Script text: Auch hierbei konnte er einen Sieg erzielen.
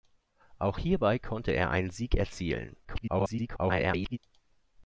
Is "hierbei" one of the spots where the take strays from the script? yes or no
no